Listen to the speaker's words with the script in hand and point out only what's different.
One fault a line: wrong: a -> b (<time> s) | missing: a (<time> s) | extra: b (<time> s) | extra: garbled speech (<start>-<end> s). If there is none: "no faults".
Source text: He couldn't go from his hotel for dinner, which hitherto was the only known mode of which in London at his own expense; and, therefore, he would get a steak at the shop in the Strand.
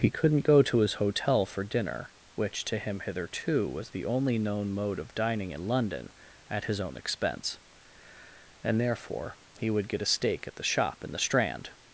wrong: from -> to (0.6 s)
extra: to him (2.6 s)
wrong: which -> dining (5.1 s)